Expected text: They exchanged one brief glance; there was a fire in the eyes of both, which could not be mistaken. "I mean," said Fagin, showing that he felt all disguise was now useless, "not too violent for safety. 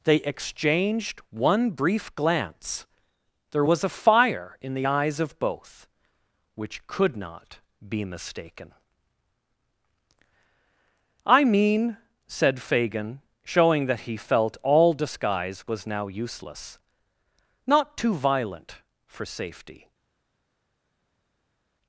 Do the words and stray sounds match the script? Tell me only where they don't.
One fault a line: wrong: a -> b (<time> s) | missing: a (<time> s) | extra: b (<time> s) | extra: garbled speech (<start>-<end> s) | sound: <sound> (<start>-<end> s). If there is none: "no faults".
no faults